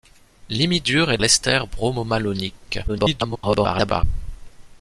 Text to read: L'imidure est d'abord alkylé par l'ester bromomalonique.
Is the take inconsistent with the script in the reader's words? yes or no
yes